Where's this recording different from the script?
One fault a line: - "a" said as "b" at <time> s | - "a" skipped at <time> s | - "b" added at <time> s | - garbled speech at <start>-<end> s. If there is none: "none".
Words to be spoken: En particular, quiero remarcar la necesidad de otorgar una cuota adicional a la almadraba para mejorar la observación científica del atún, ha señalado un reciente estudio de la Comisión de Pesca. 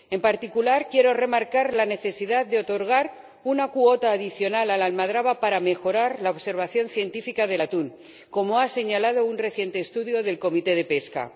- "como" added at 8.3 s